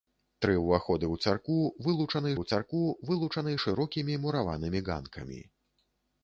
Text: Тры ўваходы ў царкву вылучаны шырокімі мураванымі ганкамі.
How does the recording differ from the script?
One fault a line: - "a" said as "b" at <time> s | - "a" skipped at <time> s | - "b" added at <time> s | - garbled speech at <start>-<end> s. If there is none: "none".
- "ў царкву вылучаны" added at 2.4 s